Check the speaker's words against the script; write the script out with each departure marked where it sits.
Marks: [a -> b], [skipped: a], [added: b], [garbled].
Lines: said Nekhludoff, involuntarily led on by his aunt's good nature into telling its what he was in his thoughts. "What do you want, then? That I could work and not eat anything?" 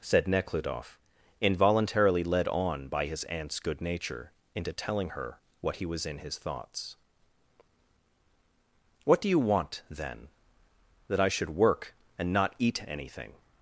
said Nekhludoff, involuntarily led on by his aunt's good nature into telling [its -> her] what he was in his thoughts. "What do you want, then? That I [could -> should] work and not eat anything?"